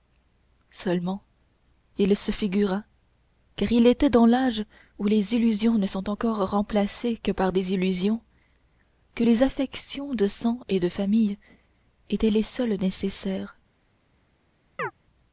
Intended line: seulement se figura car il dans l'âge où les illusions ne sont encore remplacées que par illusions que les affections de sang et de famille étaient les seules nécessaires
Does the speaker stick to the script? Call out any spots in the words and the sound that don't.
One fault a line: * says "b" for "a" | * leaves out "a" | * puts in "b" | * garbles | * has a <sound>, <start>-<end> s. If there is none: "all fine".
* puts in "il"
* puts in "était"
* puts in "des"
* has a chirp, 14.8-14.9 s